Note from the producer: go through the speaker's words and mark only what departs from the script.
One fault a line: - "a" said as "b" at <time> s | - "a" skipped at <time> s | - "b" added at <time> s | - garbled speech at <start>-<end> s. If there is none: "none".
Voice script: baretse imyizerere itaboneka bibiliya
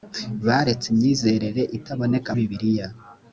none